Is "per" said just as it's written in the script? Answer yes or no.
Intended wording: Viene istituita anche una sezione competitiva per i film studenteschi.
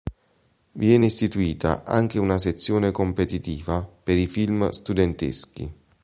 yes